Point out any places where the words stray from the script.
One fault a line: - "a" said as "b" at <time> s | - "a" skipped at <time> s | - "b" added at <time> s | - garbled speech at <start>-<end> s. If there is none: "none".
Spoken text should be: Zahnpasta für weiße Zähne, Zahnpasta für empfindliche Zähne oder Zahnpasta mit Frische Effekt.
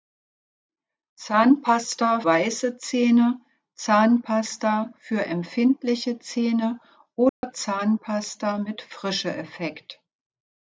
- "für" skipped at 2.2 s